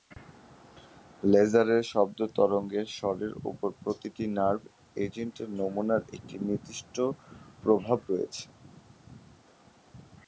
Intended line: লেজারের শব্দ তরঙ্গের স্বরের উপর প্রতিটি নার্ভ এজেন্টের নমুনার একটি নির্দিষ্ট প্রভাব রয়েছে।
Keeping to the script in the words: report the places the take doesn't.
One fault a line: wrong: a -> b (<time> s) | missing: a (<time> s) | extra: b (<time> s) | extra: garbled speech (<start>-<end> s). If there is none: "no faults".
no faults